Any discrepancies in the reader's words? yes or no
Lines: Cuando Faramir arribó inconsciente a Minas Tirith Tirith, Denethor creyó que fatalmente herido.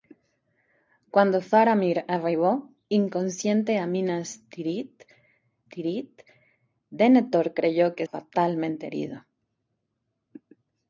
no